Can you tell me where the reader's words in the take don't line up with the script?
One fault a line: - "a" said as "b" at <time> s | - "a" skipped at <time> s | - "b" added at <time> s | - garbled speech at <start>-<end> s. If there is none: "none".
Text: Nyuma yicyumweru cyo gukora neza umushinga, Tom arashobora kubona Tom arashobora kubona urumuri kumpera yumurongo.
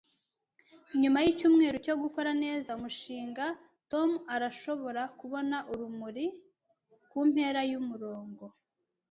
- "Tom arashobora kubona" skipped at 5.6 s